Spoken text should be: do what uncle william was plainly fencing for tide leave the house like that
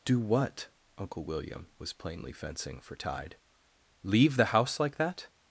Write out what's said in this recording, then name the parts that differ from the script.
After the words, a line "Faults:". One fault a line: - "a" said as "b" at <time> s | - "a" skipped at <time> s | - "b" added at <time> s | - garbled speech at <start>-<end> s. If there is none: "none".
do what uncle william was plainly fencing for tide leave the house like that
Faults:
none